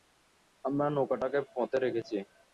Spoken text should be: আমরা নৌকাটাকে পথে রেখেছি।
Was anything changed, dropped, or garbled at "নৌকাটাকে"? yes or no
no